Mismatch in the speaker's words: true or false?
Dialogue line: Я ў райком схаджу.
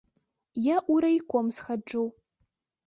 false